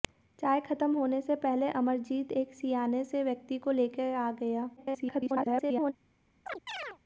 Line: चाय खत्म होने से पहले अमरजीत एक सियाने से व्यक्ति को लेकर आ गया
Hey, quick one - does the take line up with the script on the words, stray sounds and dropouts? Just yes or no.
no